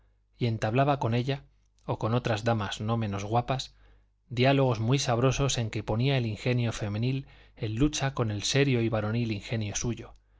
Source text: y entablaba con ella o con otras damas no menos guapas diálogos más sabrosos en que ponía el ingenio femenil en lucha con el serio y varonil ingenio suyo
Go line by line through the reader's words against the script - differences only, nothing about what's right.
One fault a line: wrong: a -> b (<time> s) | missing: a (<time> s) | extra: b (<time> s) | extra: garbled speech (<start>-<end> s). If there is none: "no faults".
wrong: más -> muy (4.8 s)